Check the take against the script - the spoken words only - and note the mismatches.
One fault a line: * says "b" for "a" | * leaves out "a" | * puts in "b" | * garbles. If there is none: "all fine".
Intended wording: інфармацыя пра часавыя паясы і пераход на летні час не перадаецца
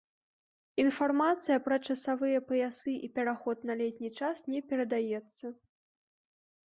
all fine